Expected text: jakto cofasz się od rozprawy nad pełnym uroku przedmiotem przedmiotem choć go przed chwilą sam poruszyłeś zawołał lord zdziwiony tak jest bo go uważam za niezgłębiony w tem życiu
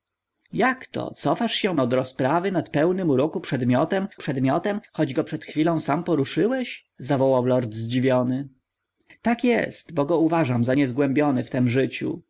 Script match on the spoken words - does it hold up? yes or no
yes